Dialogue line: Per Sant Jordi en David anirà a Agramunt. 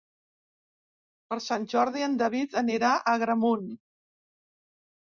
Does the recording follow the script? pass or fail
pass